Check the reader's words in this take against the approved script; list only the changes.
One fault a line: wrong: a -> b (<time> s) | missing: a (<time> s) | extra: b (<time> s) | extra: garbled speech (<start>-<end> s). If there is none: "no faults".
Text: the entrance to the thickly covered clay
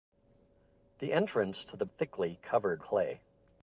no faults